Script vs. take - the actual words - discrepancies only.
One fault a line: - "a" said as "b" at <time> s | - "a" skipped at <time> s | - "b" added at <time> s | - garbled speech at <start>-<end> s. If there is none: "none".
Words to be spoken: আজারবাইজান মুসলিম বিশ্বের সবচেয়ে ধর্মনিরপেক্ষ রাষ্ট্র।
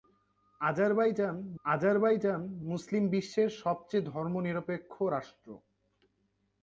- "আজারবাইজান" added at 1.7 s